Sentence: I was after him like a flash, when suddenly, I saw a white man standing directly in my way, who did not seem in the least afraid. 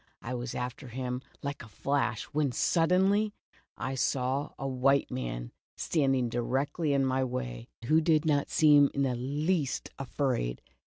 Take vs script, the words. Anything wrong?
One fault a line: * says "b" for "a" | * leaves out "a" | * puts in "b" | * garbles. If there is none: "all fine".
all fine